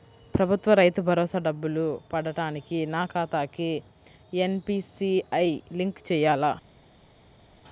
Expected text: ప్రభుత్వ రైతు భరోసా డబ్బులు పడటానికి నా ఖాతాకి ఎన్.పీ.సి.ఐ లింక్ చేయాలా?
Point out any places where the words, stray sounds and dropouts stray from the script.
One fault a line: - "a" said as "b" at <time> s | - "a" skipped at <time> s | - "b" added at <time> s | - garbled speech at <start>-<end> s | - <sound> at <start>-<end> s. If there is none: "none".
none